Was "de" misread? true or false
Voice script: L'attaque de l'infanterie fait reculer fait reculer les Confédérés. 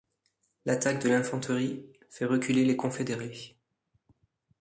false